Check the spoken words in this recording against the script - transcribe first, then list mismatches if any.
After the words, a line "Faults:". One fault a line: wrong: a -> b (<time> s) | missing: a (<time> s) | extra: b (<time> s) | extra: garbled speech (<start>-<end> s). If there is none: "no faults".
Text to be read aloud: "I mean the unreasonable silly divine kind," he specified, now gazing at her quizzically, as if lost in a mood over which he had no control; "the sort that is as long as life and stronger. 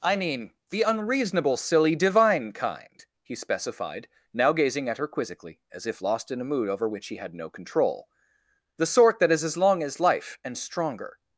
"I mean the unreasonable silly divine kind," he specified, now gazing at her quizzically, as if lost in a mood over which he had no control; "the sort that is as long as life and stronger.
Faults:
no faults